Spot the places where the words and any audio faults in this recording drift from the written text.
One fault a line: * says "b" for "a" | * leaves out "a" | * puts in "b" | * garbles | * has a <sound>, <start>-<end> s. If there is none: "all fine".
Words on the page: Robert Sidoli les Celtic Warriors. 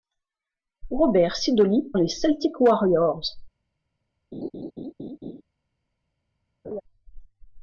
* has a laugh, 4.3-5.4 s
* has a laugh, 6.6-6.8 s